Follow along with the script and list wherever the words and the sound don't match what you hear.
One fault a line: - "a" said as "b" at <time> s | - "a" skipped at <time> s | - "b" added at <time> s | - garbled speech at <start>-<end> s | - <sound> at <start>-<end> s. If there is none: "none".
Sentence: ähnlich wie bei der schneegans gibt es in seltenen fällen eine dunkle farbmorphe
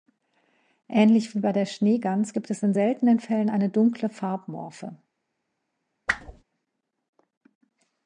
- whoosh at 6.1-6.4 s